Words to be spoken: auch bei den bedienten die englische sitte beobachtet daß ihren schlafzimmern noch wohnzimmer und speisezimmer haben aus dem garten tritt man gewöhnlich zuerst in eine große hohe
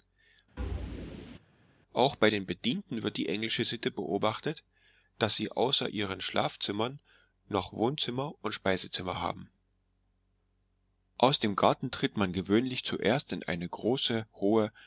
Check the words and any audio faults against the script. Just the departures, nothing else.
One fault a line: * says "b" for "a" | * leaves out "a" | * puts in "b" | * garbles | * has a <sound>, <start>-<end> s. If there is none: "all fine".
* has a thud, 0.6-1.4 s
* puts in "wird"
* puts in "sie außer"